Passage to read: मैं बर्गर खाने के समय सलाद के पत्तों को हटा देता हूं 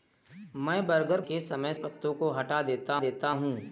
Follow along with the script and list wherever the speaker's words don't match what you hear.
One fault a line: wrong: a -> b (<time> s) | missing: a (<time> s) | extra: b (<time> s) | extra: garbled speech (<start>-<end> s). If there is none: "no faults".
missing: खाने (1.2 s)
missing: सलाद के (1.7 s)
extra: देता (3.0 s)